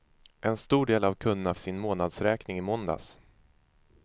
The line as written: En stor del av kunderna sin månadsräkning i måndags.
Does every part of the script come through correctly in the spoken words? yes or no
yes